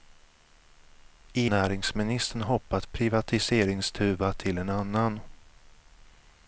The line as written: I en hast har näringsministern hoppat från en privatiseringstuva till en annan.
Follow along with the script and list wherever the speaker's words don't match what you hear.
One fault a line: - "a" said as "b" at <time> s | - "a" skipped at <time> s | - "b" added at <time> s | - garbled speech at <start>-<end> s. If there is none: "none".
- "en hast har" skipped at 1.5 s
- "från en" skipped at 2.8 s